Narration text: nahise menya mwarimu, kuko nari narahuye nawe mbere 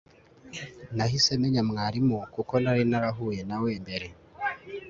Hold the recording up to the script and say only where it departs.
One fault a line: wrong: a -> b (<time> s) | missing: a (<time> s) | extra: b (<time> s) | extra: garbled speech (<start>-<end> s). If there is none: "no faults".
no faults